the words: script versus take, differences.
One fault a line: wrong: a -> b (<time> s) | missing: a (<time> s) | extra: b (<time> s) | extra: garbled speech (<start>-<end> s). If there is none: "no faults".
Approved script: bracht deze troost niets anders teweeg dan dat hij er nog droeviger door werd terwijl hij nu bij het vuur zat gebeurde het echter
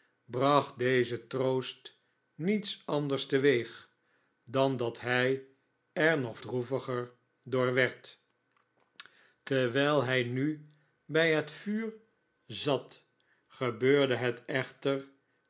no faults